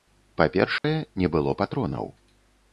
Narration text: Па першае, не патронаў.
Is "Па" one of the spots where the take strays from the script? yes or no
no